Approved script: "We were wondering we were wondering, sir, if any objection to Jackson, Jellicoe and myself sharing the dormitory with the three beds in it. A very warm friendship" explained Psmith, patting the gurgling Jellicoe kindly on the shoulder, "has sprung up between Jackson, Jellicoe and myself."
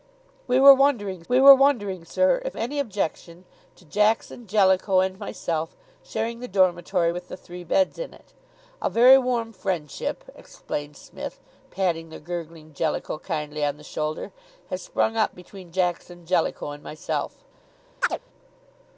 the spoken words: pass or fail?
pass